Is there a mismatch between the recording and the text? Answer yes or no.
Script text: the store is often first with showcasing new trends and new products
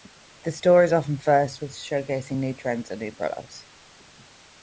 no